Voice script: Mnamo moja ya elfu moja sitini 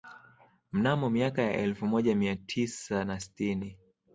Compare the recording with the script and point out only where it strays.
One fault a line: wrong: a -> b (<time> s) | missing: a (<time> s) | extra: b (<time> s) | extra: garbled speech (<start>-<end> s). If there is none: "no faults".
wrong: moja -> miaka (1.1 s)
extra: mia tisa na (2.1 s)